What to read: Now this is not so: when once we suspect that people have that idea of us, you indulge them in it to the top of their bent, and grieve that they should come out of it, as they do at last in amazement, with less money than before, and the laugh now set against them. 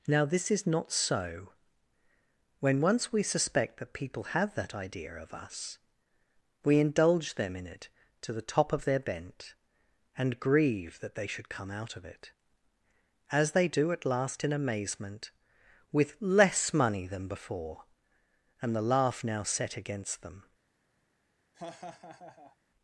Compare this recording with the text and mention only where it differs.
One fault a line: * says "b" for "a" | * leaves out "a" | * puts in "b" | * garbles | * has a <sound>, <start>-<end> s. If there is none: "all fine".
* says "we" for "you"
* has a laugh, 21.5-22.6 s